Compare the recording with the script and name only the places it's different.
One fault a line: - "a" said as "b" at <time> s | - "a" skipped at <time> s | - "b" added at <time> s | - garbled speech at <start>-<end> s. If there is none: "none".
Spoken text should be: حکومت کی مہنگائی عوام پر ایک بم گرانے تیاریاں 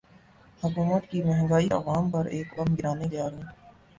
none